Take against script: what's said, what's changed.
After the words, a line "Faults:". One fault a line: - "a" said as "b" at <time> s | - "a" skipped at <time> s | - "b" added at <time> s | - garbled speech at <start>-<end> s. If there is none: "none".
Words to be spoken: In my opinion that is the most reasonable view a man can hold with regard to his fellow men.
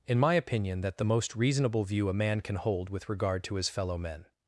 In my opinion that the most reasonable view a man can hold with regard to his fellow men.
Faults:
- "is" skipped at 1.0 s